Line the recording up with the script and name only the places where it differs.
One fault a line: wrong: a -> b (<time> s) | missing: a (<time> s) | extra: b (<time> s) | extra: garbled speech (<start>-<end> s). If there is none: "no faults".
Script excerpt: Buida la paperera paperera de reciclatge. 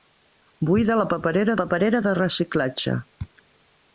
no faults